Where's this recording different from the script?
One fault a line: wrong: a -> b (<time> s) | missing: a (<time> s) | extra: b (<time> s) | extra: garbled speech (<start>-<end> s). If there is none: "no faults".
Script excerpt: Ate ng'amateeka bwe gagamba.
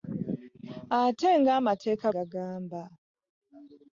missing: bwe (2.1 s)